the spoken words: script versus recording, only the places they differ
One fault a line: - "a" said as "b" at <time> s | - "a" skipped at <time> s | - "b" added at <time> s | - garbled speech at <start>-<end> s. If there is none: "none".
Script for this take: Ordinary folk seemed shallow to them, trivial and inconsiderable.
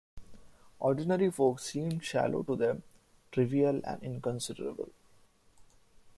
none